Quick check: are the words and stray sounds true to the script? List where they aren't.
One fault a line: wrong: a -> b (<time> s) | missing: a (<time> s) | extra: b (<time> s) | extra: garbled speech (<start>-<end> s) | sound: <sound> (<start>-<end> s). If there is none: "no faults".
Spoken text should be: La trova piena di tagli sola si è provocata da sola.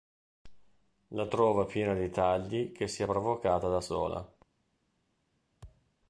wrong: sola -> che (2.7 s)
sound: thud (5.6-5.9 s)